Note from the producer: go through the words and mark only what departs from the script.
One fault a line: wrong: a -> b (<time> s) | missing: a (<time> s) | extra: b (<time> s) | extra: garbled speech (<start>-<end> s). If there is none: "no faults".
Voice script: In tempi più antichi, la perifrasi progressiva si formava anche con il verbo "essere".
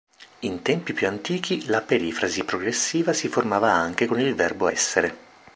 no faults